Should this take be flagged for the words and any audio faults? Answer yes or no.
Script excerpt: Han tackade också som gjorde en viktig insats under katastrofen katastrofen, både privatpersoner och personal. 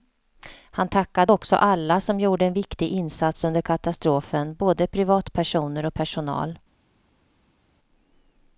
yes